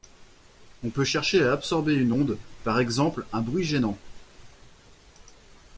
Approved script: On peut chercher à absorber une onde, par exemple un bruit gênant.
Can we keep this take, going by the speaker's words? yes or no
yes